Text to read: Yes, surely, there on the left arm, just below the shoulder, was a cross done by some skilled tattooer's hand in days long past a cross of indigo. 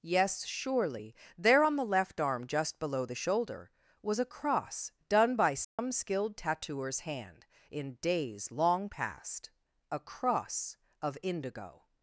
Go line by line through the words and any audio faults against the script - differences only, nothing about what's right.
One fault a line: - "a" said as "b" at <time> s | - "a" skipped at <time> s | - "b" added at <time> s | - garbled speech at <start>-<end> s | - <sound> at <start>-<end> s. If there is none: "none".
- dropout at 5.6-5.8 s